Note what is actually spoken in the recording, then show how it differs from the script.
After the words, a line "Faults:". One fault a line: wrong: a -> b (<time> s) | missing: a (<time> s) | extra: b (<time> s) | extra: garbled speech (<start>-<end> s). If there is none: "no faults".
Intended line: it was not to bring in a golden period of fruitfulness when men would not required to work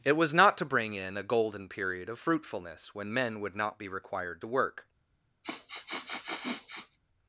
it was not to bring in a golden period of fruitfulness when men would not be required to work
Faults:
extra: be (3.8 s)